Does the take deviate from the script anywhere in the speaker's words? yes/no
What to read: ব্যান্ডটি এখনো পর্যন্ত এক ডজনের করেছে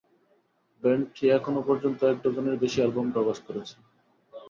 yes